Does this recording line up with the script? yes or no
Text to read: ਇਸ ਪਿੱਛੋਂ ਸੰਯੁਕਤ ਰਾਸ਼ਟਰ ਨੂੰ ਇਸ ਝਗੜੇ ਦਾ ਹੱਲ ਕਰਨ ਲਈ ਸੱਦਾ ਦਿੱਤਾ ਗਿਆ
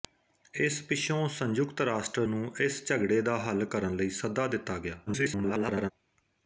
no